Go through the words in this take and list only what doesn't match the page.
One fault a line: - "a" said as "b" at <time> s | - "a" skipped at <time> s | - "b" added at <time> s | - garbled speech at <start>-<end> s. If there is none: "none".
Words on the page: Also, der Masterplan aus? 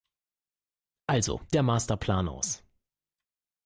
none